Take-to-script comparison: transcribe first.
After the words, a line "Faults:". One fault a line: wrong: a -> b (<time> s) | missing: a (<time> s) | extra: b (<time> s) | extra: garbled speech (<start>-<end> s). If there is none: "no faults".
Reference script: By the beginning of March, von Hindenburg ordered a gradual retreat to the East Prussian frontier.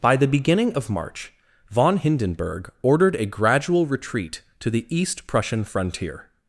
By the beginning of March, von Hindenburg ordered a gradual retreat to the East Prussian frontier.
Faults:
no faults